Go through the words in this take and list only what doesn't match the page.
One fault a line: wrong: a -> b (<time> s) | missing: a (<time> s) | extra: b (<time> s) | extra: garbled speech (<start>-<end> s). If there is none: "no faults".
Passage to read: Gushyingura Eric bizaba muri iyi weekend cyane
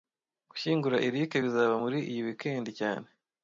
no faults